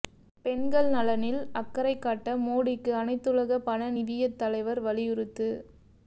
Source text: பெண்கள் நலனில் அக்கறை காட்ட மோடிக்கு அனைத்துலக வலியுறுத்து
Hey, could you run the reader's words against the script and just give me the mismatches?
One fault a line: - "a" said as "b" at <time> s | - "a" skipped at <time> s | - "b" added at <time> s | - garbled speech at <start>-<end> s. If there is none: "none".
- "பண நிதியத் தலைவர்" added at 3.7 s